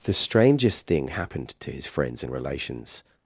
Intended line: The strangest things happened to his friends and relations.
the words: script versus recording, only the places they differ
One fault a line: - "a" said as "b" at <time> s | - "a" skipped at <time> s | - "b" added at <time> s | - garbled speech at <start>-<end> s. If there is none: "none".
- "things" said as "thing" at 0.9 s